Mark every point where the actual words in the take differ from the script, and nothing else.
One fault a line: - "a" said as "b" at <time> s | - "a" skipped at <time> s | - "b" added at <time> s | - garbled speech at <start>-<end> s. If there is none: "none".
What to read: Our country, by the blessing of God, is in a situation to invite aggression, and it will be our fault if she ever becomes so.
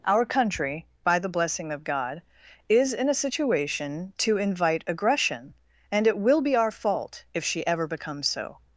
none